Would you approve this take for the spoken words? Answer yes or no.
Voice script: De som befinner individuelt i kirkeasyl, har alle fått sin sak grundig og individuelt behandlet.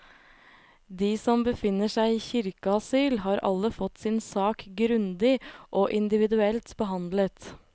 no